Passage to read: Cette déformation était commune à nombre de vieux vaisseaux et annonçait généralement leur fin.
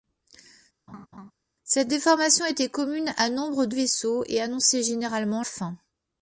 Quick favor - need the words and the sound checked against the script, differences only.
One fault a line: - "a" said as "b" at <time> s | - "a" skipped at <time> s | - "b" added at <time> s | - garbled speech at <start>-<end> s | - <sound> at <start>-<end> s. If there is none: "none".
- laugh at 0.9-1.3 s
- "vieux" skipped at 3.8 s
- "leur" skipped at 5.4 s